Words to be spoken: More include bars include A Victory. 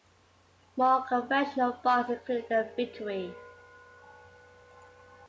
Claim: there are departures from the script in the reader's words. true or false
true